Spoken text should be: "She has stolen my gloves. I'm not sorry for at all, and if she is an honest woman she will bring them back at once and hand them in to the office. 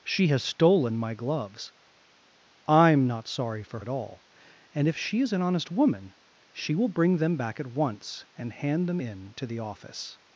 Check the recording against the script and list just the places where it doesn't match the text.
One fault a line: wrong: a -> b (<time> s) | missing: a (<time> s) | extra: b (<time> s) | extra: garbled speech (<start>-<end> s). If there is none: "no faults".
no faults